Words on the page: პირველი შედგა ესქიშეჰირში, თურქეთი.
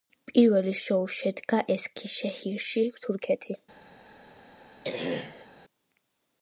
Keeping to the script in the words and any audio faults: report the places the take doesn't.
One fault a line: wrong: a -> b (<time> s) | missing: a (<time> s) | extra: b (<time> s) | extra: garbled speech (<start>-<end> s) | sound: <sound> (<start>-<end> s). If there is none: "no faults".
extra: შოუ (0.8 s)
sound: throat clearing (4.8-5.5 s)